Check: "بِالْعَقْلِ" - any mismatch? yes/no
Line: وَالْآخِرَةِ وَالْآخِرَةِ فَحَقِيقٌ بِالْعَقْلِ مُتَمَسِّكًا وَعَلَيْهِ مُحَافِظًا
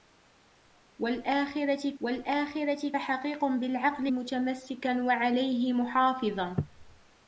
no